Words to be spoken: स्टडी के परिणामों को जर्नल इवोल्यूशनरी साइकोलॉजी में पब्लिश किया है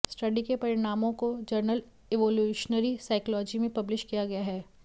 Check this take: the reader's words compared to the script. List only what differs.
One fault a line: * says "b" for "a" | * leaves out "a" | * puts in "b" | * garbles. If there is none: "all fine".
* puts in "गया"